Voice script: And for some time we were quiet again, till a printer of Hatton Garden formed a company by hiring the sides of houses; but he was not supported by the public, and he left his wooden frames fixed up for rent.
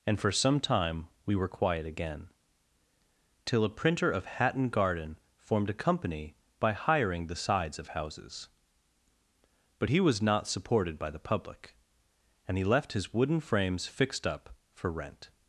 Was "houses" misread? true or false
false